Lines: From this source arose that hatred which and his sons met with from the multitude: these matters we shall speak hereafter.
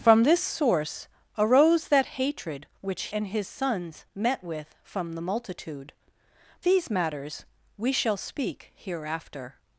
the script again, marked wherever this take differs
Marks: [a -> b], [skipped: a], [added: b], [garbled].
From this source arose that hatred which and his sons met with from the multitude: these matters we shall speak hereafter.